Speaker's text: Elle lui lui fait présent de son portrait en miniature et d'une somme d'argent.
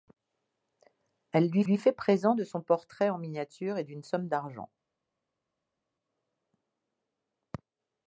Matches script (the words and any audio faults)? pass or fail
pass